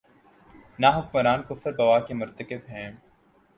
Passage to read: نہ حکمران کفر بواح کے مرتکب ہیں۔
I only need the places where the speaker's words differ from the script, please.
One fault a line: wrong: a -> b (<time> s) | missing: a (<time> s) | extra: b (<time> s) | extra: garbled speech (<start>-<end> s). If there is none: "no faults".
no faults